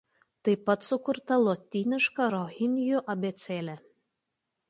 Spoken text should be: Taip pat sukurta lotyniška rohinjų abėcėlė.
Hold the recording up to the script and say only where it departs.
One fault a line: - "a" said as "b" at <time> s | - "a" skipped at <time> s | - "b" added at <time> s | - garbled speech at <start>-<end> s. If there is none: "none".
none